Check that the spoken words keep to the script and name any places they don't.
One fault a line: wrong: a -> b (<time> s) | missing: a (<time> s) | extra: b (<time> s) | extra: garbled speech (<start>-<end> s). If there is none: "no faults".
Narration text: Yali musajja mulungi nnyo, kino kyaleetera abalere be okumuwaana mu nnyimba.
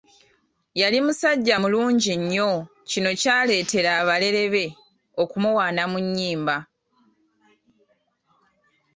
no faults